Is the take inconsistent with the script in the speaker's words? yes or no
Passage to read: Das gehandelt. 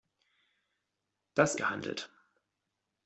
no